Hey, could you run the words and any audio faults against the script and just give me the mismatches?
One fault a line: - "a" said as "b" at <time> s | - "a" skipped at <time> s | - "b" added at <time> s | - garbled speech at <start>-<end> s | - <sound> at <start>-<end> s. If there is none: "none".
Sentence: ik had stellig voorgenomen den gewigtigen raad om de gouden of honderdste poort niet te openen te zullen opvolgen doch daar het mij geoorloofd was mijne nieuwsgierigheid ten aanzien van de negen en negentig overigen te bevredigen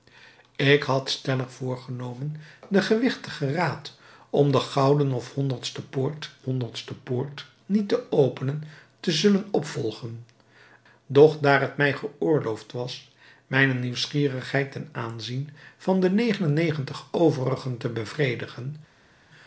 - "honderdste poort" added at 6.4 s